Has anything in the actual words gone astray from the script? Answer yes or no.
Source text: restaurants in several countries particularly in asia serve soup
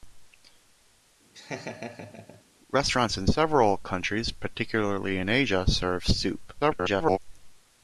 yes